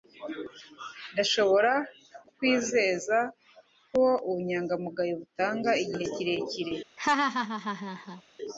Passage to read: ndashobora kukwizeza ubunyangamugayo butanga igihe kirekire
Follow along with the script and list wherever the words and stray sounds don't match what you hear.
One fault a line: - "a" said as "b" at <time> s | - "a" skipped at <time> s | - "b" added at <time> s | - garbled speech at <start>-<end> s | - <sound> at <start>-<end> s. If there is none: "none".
- "ko" added at 3.9 s
- laugh at 7.0-8.2 s